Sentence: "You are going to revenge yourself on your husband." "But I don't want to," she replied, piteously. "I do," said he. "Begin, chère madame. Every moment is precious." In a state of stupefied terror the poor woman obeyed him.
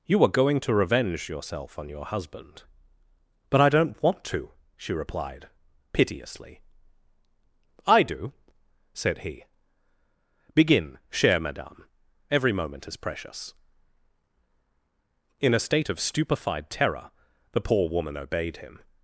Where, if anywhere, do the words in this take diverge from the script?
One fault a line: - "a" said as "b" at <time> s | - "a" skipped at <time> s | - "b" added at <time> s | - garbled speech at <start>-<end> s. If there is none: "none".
none